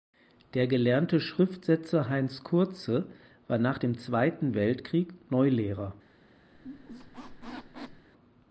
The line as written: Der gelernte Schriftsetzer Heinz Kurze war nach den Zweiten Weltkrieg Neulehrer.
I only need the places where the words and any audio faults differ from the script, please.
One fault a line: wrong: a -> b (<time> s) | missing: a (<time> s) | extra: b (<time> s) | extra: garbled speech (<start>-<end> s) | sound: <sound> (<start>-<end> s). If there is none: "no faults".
wrong: den -> dem (3.7 s)
sound: squeak (6.5-8.1 s)